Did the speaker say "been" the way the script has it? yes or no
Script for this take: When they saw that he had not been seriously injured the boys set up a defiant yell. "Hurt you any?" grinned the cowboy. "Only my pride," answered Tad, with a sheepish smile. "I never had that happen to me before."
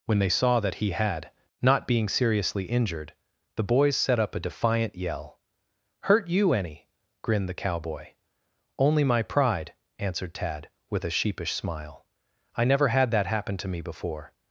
no